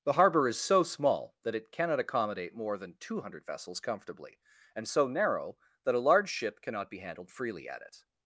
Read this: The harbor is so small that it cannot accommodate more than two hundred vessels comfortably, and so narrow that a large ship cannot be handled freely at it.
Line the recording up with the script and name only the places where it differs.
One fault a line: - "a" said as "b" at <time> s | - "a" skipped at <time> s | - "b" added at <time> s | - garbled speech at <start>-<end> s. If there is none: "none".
none